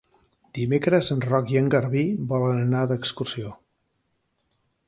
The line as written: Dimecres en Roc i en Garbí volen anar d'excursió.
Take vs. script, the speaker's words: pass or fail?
pass